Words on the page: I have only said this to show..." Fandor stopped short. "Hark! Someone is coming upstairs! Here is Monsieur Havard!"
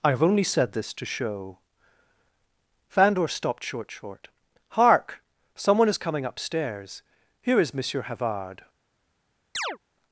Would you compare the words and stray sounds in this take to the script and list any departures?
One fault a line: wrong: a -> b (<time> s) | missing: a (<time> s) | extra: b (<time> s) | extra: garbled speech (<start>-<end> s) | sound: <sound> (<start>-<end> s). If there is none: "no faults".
extra: short (3.9 s)
sound: chirp (9.5-9.8 s)